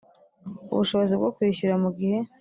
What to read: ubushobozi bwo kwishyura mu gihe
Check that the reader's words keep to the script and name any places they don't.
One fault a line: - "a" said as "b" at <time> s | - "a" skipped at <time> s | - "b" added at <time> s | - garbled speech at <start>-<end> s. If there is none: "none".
none